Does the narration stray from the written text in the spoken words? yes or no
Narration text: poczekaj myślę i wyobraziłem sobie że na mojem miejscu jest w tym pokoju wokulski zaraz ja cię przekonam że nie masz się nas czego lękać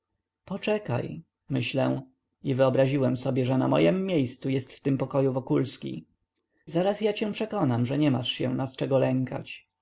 no